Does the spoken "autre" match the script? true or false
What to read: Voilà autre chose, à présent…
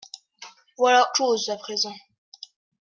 false